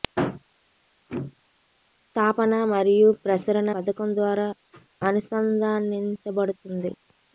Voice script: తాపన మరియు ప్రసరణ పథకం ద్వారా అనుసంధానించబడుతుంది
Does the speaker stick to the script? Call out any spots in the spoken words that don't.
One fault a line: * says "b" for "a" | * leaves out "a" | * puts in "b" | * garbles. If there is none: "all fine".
all fine